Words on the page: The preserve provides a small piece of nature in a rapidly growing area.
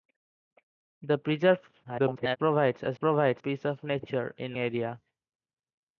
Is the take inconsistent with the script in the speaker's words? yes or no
yes